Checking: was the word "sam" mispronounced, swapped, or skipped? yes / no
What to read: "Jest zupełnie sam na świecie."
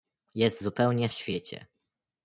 yes